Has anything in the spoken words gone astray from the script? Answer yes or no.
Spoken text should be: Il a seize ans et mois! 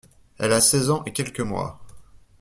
yes